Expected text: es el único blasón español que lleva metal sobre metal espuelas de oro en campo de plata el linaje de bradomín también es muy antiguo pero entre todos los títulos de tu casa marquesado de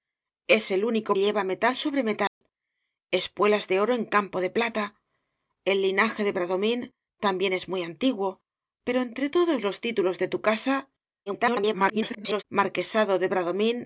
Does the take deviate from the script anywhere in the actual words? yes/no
yes